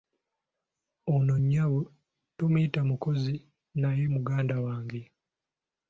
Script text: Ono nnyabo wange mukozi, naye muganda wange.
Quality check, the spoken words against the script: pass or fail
fail